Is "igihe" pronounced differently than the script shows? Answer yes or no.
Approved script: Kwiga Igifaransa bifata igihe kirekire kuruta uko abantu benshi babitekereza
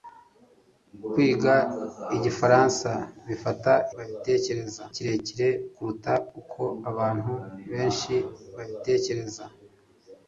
yes